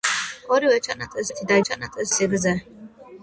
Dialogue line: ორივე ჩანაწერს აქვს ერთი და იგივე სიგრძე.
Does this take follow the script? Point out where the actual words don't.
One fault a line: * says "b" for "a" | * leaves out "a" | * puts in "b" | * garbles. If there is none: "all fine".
* leaves out "აქვს"
* says "ჩანაწერს" for "იგივე"